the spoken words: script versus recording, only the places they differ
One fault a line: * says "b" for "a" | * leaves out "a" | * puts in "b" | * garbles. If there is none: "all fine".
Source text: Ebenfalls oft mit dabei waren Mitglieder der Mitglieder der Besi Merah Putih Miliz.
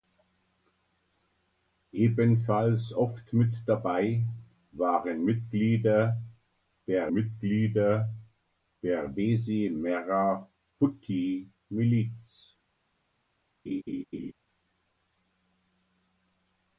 all fine